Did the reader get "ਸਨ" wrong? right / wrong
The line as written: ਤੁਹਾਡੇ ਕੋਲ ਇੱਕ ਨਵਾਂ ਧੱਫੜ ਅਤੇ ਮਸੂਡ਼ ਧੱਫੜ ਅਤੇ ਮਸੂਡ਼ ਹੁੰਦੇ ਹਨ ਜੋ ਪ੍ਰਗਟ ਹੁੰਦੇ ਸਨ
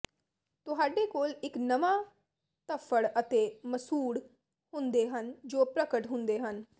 wrong